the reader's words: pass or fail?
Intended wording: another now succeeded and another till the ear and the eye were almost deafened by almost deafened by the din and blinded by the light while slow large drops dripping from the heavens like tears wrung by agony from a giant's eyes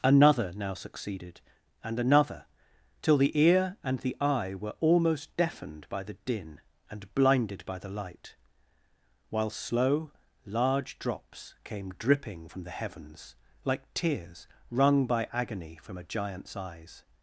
fail